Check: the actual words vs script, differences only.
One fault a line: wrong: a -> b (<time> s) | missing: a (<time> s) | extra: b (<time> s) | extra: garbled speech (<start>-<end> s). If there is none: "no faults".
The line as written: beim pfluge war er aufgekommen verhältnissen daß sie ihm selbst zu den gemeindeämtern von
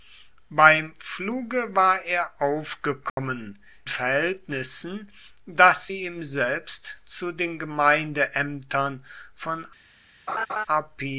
no faults